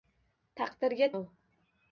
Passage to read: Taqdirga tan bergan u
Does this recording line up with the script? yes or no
no